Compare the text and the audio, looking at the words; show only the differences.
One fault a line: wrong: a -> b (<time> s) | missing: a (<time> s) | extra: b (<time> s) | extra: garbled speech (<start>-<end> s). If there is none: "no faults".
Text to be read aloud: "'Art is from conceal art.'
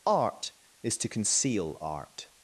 wrong: from -> to (1.0 s)